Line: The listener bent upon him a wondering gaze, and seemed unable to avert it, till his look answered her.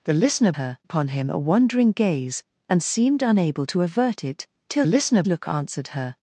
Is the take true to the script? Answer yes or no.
no